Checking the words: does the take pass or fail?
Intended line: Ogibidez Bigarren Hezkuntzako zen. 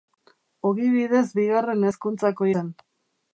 pass